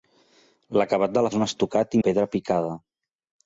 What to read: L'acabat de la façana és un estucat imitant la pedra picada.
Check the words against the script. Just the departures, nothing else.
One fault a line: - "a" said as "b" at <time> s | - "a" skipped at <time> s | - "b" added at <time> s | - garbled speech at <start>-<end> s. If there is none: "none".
- "façana" skipped at 1.3 s
- "imitant" skipped at 2.0 s